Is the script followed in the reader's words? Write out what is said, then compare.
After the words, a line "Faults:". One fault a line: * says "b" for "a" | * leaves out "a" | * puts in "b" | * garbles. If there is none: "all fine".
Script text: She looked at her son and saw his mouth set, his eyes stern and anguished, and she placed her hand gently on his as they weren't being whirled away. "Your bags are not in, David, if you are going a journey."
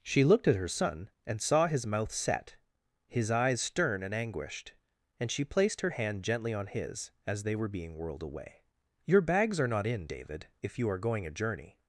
She looked at her son and saw his mouth set, his eyes stern and anguished, and she placed her hand gently on his as they were being whirled away. "Your bags are not in, David, if you are going a journey."
Faults:
* says "were" for "weren't"